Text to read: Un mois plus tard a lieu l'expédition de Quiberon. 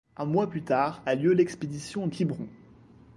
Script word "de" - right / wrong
wrong